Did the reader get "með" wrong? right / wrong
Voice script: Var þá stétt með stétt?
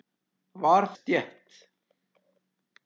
wrong